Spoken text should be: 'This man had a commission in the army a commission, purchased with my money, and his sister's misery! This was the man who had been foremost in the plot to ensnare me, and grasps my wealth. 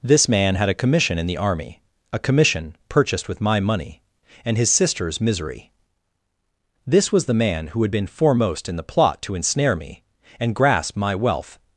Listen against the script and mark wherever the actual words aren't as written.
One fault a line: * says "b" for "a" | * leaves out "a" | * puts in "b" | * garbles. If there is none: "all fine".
* says "grasp" for "grasps"